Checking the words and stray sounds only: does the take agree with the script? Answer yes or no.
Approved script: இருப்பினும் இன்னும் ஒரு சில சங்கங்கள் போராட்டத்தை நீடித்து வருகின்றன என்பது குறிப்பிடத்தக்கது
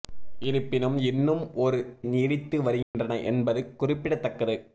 no